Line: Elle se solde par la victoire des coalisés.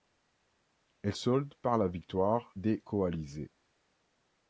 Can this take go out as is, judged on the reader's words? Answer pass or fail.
fail